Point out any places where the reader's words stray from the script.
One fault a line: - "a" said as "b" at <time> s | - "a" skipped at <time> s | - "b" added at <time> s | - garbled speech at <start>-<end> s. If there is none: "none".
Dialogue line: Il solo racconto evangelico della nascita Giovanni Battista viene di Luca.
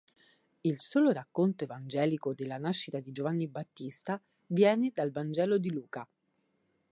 - "di" added at 3.0 s
- "dal vangelo" added at 4.9 s